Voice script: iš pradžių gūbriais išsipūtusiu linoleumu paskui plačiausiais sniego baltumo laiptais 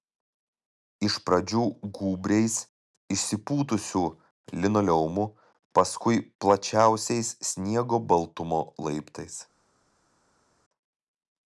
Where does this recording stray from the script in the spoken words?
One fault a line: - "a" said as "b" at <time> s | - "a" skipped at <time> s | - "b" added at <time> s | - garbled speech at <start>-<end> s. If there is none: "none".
none